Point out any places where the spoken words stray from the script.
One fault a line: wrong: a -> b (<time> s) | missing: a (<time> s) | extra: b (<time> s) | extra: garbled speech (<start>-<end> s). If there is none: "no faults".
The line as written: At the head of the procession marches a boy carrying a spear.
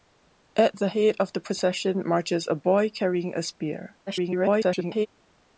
extra: garbled speech (4.1-5.1 s)